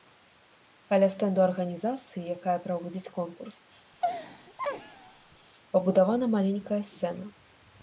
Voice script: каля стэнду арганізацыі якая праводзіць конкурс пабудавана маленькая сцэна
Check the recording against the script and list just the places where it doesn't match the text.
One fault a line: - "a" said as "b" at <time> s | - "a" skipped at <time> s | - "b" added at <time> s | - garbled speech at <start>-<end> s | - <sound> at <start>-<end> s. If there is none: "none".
- laugh at 3.9-5.5 s